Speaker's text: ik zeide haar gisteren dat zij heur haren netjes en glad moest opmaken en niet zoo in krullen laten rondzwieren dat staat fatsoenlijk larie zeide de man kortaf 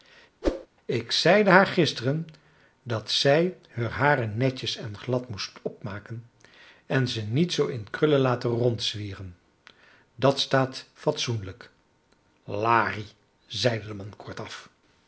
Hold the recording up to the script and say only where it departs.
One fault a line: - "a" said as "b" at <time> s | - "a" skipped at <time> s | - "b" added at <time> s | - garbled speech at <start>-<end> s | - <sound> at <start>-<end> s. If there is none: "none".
- whoosh at 0.4-0.7 s
- "ze" added at 7.1 s